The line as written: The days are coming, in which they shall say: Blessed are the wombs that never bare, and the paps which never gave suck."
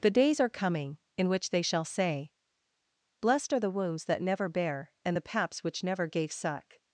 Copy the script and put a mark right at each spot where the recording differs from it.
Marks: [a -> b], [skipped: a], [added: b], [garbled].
The days are coming, in which they shall say: Blessed are the wombs that never bare, and the paps which never gave suck."